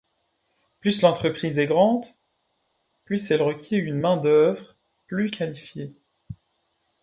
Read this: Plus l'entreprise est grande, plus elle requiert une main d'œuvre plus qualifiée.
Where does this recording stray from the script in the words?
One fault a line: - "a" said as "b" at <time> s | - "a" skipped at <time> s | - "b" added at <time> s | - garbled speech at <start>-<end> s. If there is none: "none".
none